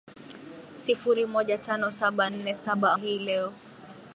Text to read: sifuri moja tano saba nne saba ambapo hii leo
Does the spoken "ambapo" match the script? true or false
false